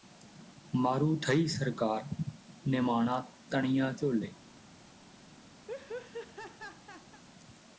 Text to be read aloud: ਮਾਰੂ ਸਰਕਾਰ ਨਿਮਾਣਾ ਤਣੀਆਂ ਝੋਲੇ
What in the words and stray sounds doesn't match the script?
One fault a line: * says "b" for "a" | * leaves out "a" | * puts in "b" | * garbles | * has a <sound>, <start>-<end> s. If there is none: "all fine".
* puts in "ਥਈ"
* has a laugh, 5.7-7.2 s